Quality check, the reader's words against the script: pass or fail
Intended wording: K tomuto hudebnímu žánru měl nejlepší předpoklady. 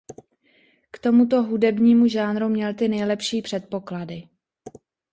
fail